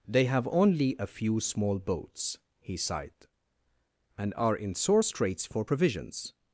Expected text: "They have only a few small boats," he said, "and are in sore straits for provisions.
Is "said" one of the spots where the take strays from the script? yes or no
yes